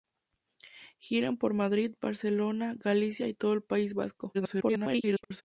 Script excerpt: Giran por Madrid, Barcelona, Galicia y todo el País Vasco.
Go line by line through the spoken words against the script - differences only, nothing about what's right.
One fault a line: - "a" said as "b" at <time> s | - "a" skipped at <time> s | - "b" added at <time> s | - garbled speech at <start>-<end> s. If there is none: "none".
- garbled speech at 4.3-5.4 s